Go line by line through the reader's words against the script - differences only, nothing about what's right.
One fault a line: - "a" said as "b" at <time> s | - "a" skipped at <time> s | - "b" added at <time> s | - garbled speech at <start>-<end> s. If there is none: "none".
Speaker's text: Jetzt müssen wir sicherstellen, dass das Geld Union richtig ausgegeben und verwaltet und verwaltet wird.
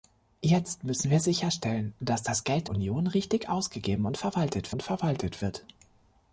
none